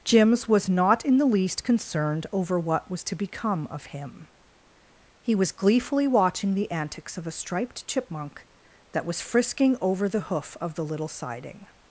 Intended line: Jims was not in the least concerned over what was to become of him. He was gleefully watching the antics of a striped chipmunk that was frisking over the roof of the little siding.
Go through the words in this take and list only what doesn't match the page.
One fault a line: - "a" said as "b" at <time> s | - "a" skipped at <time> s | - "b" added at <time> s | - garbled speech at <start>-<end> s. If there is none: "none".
- "roof" said as "hoof" at 10.2 s